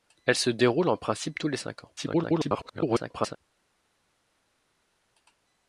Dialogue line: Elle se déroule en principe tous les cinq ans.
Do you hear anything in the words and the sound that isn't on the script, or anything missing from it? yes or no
yes